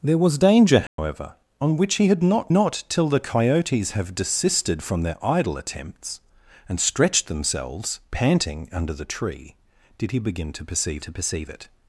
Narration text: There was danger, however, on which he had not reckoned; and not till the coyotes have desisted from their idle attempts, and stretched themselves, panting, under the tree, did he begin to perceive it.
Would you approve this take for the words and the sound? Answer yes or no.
no